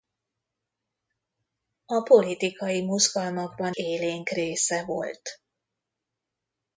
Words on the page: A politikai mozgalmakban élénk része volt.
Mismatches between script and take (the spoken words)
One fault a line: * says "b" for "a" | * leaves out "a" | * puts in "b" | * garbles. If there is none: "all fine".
all fine